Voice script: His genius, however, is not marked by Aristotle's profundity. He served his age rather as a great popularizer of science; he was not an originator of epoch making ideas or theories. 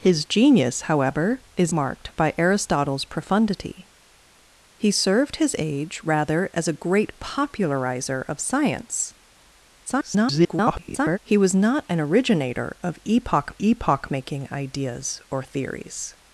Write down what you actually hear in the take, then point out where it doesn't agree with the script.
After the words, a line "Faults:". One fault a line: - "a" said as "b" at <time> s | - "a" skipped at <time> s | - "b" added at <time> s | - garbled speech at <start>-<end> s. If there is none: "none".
His genius, however, is marked by Aristotle's profundity. He served his age rather as a great popularizer of science; [garbled] he was not an originator of epoch epoch making ideas or theories.
Faults:
- "not" skipped at 1.7 s
- garbled speech at 9.9-11.2 s
- "epoch" added at 13.6 s